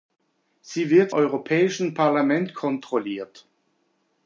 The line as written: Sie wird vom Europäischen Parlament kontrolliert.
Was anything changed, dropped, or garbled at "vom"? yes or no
yes